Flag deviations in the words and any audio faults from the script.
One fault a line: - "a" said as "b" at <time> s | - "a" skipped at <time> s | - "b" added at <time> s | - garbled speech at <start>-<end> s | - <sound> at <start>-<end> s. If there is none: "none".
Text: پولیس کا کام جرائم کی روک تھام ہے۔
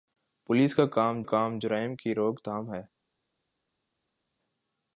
- "کام" added at 1.2 s